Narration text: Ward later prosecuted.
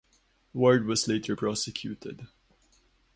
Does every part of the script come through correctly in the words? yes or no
no